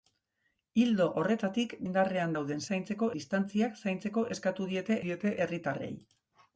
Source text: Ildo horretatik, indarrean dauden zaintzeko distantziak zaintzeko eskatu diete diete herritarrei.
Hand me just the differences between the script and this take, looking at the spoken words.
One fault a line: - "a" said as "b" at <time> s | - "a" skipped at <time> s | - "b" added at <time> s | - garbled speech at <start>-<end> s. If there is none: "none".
none